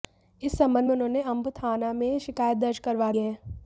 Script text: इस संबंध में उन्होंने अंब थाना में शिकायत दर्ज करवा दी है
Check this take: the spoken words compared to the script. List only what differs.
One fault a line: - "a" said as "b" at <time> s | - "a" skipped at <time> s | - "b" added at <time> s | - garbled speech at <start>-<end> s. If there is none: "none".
- "दी" skipped at 3.1 s